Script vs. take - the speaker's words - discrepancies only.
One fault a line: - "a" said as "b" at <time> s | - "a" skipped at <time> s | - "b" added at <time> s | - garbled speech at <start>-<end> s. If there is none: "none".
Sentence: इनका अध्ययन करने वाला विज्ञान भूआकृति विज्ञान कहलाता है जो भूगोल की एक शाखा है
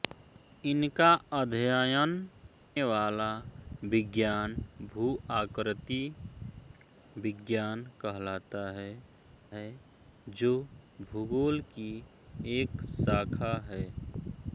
- "करने" skipped at 2.1 s
- "है" added at 9.6 s